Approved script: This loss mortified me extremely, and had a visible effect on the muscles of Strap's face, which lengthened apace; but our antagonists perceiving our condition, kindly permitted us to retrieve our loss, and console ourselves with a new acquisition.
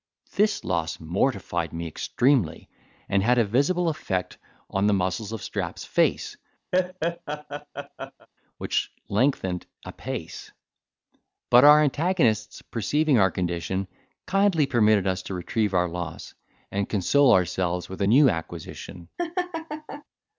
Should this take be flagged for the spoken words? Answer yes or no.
no